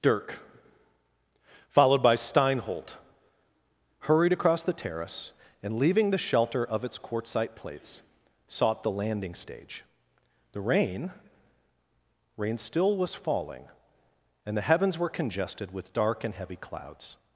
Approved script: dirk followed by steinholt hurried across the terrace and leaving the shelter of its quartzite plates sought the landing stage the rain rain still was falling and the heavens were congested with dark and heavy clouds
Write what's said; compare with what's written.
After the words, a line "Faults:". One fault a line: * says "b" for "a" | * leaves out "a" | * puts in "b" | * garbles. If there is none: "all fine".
dirk followed by steinholt hurried across the terrace and leaving the shelter of its quartzite plates sought the landing stage the rain rain still was falling and the heavens were congested with dark and heavy clouds
Faults:
all fine